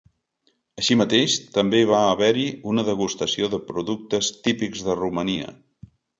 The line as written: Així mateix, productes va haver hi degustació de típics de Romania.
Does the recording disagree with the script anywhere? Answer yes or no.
yes